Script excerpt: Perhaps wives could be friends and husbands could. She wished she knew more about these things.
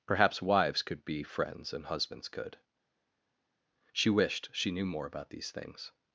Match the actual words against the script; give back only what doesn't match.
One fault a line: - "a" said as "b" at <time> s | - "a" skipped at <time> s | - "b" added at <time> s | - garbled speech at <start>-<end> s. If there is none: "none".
none